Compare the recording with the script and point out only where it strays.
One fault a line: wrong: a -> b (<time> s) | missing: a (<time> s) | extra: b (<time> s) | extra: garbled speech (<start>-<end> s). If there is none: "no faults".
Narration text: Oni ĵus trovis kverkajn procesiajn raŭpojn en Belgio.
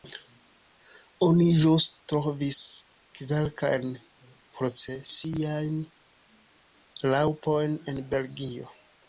no faults